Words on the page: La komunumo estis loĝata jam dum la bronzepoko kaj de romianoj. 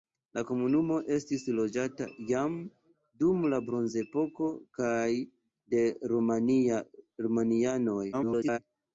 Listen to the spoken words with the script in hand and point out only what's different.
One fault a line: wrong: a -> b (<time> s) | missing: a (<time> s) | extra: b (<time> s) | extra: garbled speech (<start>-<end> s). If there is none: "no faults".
extra: garbled speech (8.1-8.6 s)